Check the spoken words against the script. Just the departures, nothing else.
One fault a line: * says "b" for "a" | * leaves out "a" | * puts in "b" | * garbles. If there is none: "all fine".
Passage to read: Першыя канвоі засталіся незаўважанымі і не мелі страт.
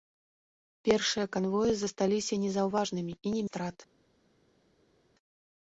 * leaves out "мелі"